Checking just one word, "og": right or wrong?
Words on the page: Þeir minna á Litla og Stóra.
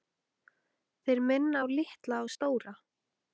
right